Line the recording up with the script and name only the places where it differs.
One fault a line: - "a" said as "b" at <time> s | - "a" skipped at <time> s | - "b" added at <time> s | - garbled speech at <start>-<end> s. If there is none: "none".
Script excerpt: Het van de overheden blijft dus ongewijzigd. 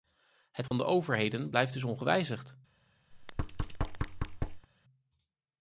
none